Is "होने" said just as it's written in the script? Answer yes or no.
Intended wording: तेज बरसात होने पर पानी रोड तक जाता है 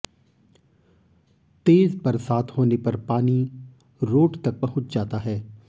yes